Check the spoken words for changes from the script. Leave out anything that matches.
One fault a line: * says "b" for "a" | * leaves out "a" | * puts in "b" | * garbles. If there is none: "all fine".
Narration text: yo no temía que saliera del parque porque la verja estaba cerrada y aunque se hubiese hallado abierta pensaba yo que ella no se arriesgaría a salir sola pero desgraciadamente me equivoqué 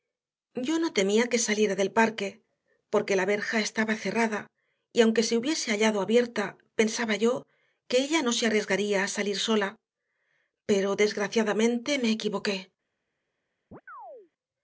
all fine